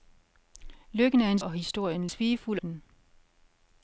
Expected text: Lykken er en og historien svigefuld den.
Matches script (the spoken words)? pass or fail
pass